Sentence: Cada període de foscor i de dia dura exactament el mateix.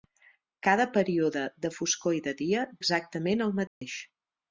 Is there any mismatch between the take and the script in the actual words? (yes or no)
yes